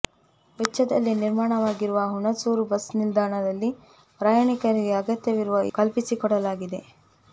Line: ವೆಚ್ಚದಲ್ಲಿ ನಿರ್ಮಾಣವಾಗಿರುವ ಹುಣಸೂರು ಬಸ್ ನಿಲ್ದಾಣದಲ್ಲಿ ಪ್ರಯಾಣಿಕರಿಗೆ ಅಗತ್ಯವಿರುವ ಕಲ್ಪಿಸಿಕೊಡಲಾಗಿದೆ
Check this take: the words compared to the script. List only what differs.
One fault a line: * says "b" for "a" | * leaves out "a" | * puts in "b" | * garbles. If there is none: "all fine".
all fine